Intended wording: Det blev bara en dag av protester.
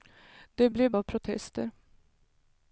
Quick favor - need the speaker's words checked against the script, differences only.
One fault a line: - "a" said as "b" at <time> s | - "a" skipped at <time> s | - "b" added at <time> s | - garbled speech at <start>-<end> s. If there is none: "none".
- "bara en dag" skipped at 0.9 s